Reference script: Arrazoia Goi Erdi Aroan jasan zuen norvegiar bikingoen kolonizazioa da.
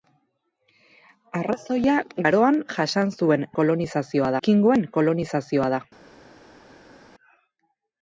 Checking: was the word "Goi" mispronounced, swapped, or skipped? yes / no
yes